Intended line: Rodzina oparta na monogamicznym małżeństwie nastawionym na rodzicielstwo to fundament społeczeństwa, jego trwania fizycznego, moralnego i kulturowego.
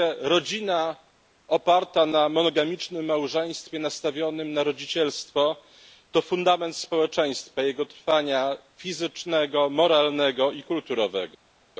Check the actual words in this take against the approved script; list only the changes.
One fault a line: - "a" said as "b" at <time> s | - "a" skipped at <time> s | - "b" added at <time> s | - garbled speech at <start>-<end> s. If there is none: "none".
none